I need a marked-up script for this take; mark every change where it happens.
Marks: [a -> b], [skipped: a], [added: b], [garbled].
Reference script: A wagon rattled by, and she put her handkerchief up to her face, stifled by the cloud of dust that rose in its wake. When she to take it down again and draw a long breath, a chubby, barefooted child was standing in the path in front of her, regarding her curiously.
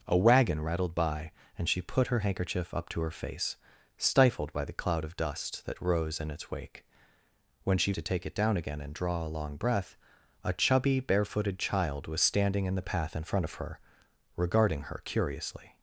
A wagon rattled by, and she put her handkerchief up to her face, stifled by the cloud of dust that rose in its wake. When she to take it down again and draw a long breath, a chubby, barefooted child was standing in the path in front of her, regarding her curiously.